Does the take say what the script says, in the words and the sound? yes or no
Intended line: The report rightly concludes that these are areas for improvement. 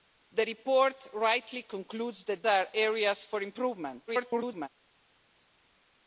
no